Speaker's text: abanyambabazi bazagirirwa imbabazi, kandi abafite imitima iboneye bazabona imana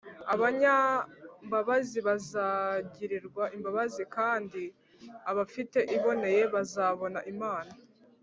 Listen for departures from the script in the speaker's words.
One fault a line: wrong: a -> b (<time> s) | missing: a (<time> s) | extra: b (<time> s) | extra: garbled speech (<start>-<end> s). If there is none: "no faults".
missing: imitima (5.8 s)